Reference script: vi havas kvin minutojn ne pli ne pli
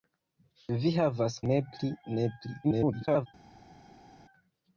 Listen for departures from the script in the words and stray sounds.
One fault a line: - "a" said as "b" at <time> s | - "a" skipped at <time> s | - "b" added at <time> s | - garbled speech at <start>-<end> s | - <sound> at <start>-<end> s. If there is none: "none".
- "kvin minutojn" skipped at 1.4 s
- garbled speech at 2.6-3.3 s